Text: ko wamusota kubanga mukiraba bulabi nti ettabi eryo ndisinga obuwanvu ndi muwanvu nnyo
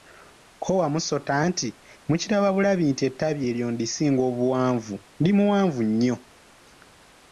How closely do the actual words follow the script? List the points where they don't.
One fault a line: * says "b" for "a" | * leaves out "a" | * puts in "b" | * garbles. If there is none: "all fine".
* says "nti" for "kubanga"